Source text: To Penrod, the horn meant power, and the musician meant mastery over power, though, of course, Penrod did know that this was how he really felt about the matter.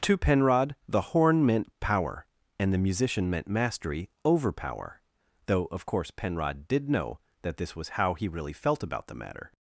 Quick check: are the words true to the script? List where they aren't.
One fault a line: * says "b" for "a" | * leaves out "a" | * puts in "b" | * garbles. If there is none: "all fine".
all fine